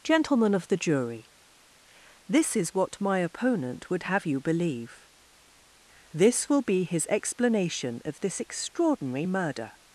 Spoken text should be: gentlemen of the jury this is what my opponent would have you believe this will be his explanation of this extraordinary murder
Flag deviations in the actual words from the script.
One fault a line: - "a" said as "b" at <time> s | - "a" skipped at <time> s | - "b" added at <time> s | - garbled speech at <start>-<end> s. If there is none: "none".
none